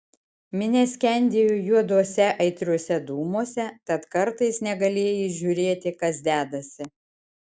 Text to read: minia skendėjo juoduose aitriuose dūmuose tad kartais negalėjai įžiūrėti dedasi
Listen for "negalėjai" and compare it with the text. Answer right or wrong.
right